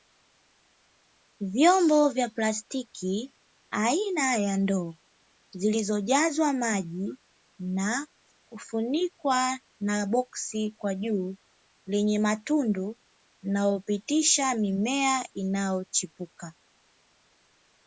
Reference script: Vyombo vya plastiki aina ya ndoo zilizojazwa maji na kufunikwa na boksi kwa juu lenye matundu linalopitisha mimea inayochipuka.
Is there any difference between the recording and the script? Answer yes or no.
no